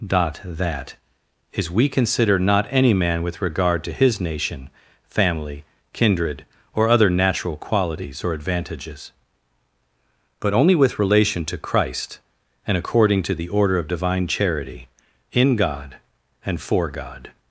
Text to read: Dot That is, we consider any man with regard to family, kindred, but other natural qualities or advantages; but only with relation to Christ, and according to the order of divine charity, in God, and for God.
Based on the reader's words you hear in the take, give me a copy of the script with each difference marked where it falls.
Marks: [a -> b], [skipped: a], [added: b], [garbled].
Dot That is, we consider [added: not] any man with regard to [added: his nation] family, kindred, [but -> or] other natural qualities or advantages; but only with relation to Christ, and according to the order of divine charity, in God, and for God.